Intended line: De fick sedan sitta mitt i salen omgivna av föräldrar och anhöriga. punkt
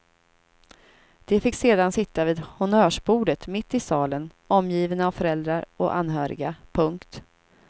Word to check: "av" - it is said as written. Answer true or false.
true